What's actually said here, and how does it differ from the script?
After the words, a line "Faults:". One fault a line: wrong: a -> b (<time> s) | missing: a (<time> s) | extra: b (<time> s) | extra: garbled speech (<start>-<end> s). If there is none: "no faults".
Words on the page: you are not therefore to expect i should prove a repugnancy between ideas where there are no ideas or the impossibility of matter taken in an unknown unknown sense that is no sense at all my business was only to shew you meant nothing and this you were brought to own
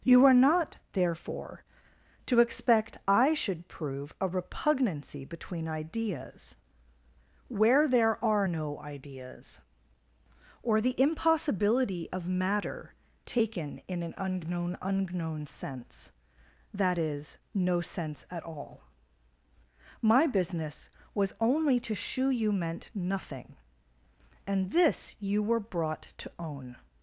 you are not therefore to expect i should prove a repugnancy between ideas where there are no ideas or the impossibility of matter taken in an unknown unknown sense that is no sense at all my business was only to shew you meant nothing and this you were brought to own
Faults:
no faults